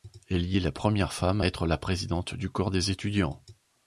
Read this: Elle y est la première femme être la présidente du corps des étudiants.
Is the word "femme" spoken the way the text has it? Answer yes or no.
yes